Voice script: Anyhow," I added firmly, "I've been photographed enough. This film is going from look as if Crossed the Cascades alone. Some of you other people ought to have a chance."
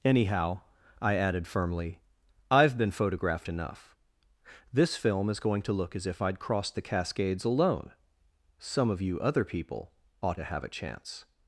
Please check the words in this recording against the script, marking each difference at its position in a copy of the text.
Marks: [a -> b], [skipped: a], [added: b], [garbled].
Anyhow," I added firmly, "I've been photographed enough. This film is going [from -> to] look as if [added: I'd] Crossed the Cascades alone. Some of you other people ought to have a chance."